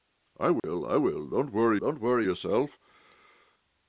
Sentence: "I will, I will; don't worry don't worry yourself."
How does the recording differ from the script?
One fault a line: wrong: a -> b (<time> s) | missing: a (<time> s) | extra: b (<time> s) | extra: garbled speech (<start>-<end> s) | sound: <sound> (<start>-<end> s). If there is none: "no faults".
sound: dropout (0.6-0.6 s)